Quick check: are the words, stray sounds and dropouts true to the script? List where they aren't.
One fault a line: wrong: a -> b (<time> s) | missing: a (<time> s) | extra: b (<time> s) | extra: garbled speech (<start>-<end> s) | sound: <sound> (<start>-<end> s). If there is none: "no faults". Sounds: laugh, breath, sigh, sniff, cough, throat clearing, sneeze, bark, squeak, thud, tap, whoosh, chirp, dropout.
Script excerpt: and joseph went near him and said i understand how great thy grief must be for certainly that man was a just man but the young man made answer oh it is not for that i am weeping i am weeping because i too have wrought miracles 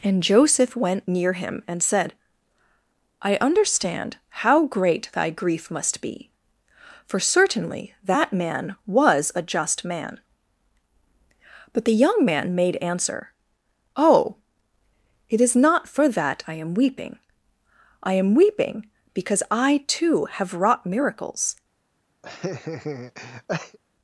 sound: laugh (22.2-23.8 s)